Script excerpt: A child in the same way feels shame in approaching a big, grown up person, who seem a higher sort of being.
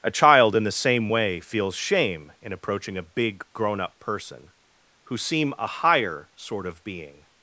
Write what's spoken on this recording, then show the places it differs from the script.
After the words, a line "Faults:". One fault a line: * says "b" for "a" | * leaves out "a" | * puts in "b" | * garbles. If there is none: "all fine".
A child in the same way feels shame in approaching a big, grown up person, who seem a higher sort of being.
Faults:
all fine